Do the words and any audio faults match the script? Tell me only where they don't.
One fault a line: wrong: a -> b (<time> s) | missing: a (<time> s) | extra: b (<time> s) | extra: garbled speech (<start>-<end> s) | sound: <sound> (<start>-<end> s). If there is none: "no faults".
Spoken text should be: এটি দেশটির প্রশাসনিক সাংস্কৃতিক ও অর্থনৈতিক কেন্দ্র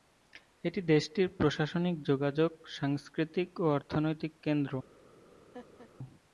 extra: যোগাযোগ (2.0 s)
sound: laugh (5.5-5.9 s)